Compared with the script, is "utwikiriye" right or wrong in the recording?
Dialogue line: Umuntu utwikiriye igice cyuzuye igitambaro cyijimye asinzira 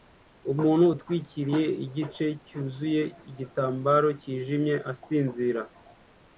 right